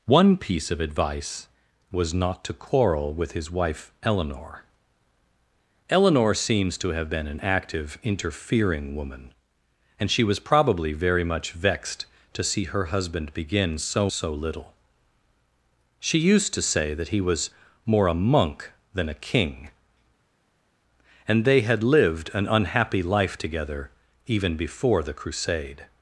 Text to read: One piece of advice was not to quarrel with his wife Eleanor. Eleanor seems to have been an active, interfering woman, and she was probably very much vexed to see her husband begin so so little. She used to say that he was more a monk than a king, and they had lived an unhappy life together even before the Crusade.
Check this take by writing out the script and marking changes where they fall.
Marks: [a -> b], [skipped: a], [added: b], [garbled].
One piece of advice was not to quarrel with his wife Eleanor. Eleanor seems to have been an active, interfering woman, and she was probably very much vexed to see her husband begin so so little. She used to say that he was more a monk than a king, and they had lived an unhappy life together even before the Crusade.